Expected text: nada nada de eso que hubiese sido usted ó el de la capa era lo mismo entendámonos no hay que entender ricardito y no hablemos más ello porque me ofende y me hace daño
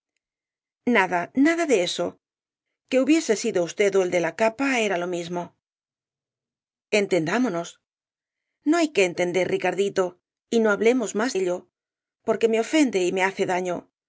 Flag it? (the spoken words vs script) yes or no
no